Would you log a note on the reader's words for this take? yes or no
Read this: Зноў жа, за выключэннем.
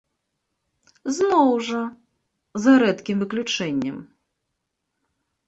yes